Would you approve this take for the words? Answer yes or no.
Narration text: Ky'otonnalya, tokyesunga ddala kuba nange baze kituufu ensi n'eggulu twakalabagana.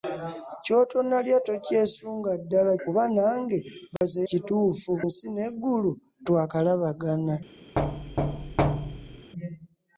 yes